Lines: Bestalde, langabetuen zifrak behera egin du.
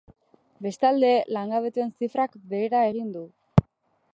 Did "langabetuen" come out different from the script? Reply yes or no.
no